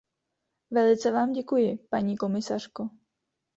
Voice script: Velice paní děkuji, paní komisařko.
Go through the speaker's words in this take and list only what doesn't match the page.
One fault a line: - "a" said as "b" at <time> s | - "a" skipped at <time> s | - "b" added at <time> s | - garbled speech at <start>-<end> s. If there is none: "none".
- "paní" said as "vám" at 1.1 s